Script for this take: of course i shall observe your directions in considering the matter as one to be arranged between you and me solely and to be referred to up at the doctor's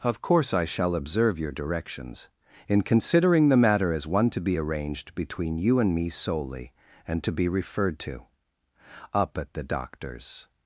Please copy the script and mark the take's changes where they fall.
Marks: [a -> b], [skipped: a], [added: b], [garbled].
of course i shall observe your directions in considering the matter as one to be arranged between you and me solely and to be referred to up at the doctor's